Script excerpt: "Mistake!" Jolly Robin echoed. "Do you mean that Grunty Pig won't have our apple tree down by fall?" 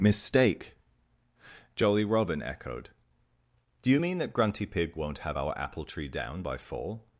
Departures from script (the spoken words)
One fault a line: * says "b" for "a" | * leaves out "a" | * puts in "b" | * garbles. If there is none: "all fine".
all fine